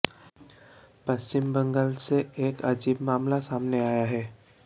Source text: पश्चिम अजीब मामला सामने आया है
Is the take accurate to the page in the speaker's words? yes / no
no